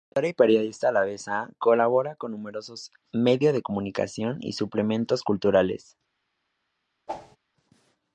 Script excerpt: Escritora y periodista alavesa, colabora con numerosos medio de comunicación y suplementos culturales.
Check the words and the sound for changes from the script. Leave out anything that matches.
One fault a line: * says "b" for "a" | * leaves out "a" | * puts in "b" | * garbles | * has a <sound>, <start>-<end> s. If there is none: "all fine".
* has a whoosh, 7.1-7.4 s